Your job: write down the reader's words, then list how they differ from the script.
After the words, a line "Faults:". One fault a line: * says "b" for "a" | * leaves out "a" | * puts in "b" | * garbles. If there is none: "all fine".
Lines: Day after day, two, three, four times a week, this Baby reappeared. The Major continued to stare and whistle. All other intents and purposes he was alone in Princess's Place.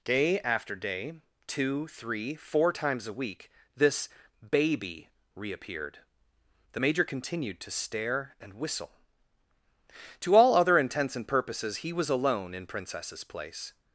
Day after day, two, three, four times a week, this Baby reappeared. The Major continued to stare and whistle. To all other intents and purposes he was alone in Princess's Place.
Faults:
* puts in "To"